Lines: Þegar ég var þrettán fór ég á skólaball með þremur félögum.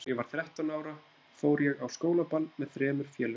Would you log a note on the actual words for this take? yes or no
yes